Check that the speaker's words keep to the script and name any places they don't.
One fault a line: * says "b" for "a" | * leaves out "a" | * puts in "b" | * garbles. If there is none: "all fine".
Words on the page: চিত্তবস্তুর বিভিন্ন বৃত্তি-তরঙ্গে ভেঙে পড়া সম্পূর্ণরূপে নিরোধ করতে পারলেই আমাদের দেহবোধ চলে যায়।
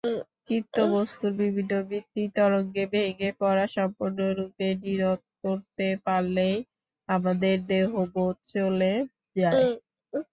all fine